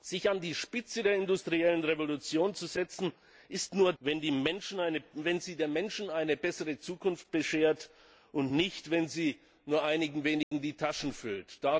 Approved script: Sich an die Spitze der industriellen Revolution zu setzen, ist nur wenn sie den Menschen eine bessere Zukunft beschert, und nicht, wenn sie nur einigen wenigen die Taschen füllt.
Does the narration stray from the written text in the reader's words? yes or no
no